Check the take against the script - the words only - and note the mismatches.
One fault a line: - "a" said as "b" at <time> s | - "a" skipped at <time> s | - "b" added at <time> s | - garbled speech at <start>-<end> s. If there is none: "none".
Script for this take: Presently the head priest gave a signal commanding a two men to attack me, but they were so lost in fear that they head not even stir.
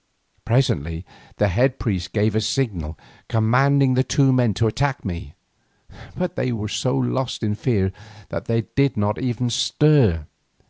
- "a" said as "the" at 3.9 s
- "head" said as "did" at 8.8 s